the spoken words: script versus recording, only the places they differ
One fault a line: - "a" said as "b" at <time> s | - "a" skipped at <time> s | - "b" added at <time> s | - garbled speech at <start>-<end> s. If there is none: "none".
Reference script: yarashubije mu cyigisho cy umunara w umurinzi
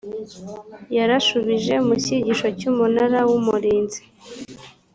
none